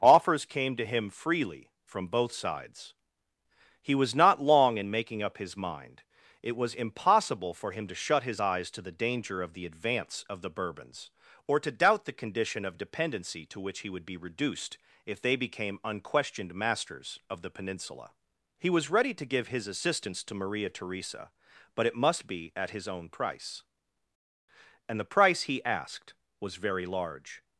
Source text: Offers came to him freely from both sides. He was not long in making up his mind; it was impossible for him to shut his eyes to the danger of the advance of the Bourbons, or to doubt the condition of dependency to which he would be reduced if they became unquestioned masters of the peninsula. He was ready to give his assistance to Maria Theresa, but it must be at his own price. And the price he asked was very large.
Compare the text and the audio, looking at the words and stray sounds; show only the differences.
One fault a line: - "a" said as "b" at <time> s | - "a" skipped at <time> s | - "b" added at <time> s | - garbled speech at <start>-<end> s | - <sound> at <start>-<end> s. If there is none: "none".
none